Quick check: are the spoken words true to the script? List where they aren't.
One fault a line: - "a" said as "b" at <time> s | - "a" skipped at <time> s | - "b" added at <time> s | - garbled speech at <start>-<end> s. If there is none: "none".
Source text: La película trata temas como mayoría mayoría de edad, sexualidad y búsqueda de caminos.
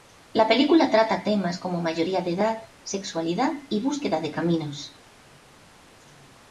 - "mayoría" skipped at 2.2 s